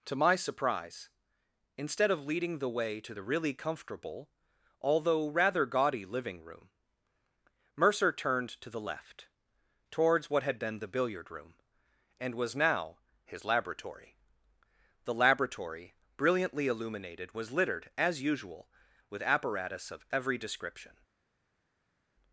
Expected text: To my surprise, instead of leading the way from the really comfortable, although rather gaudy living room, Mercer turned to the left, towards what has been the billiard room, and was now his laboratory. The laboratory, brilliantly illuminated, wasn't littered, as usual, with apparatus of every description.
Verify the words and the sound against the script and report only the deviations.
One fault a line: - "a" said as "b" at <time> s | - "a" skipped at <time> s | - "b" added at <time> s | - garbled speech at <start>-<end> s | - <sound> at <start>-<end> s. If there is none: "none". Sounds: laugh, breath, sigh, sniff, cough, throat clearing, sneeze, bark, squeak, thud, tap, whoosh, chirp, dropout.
- "from" said as "to" at 3.0 s
- "has" said as "had" at 10.4 s
- "wasn't" said as "was" at 17.3 s